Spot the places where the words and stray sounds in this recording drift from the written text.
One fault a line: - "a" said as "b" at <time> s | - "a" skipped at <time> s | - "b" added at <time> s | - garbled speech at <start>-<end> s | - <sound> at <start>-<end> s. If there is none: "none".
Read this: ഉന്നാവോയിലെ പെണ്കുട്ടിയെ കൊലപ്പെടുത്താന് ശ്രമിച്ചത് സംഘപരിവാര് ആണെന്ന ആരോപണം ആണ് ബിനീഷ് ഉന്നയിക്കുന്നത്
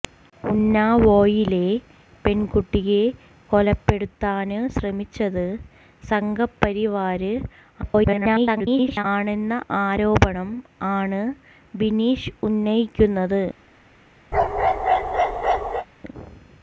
- garbled speech at 7.8-9.0 s
- bark at 14.3-15.9 s